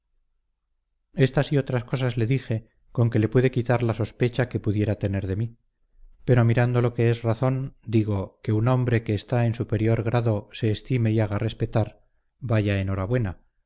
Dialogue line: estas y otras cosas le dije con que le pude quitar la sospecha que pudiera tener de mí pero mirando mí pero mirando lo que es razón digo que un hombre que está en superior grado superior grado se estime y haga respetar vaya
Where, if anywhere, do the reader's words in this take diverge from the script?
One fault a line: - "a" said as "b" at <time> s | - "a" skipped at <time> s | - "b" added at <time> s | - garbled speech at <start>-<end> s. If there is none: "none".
- "mí pero mirando" skipped at 6.8 s
- "superior grado" skipped at 10.5 s